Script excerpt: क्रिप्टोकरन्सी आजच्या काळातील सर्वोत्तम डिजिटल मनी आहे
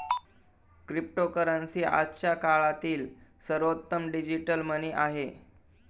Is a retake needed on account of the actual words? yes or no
no